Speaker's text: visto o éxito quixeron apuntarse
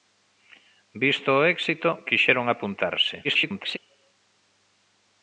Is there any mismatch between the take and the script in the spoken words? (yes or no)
yes